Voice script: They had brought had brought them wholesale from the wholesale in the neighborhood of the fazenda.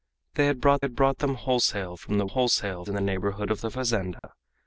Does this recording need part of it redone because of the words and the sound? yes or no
yes